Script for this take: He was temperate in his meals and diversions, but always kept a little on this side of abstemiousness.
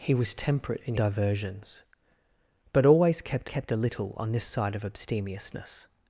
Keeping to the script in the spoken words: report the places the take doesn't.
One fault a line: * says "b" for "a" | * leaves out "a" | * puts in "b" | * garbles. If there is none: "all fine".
* leaves out "his meals and"
* puts in "kept"